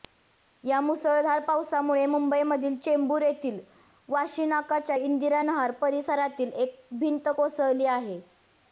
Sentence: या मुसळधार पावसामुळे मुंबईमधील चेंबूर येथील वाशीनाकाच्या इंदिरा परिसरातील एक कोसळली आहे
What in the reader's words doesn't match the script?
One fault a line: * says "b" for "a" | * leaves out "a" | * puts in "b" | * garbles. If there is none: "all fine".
* puts in "नहार"
* puts in "भिंत"